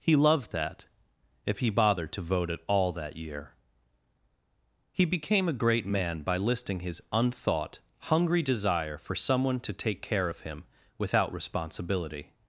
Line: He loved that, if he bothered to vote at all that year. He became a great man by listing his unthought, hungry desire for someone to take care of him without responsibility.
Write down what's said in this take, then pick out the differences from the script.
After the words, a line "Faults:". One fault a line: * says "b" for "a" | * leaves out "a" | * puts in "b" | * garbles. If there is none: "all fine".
He loved that, if he bothered to vote at all that year. He became a great man by listing his unthought, hungry desire for someone to take care of him without responsibility.
Faults:
all fine